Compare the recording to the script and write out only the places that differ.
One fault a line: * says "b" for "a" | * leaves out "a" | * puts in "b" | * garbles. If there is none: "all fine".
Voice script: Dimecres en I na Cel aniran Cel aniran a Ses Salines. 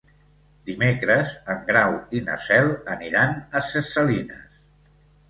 * puts in "Grau"
* leaves out "Cel aniran"